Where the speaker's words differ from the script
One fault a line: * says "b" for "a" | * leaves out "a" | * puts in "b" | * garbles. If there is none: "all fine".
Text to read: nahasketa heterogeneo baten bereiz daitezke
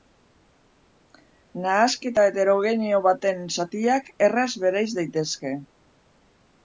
* puts in "zatiak erraz"